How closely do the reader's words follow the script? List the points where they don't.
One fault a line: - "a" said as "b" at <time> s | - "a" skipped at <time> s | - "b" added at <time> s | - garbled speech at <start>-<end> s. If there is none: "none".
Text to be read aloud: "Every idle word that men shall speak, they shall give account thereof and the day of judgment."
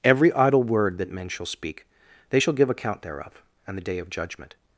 none